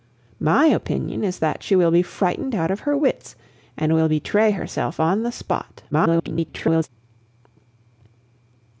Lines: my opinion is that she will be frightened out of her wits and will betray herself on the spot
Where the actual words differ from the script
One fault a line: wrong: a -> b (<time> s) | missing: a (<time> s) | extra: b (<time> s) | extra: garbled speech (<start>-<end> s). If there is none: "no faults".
extra: garbled speech (5.9-6.9 s)